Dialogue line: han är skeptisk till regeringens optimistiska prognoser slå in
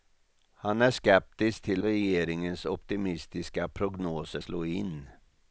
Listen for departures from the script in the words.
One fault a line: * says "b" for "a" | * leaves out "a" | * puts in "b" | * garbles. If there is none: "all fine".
all fine